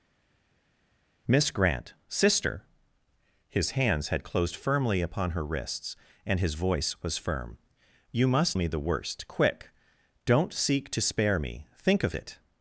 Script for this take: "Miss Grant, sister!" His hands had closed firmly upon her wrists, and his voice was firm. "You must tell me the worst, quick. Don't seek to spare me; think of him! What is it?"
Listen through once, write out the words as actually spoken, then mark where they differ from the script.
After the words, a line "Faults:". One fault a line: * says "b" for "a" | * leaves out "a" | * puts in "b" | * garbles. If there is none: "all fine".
"Miss Grant, sister!" His hands had closed firmly upon her wrists, and his voice was firm. "You must me the worst, quick. Don't seek to spare me; think of it?"
Faults:
* leaves out "tell"
* leaves out "him What is"